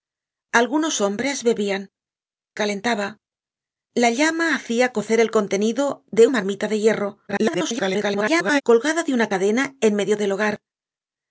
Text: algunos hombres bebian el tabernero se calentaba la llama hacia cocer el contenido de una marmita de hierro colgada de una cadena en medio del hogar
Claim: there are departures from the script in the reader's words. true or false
true